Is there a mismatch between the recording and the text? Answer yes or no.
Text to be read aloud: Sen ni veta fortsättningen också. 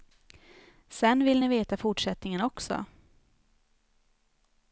yes